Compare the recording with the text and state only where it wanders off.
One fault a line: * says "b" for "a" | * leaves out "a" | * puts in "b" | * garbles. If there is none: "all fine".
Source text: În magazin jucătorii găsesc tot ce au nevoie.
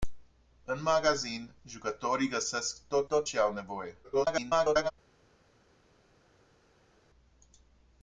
* puts in "tot"
* garbles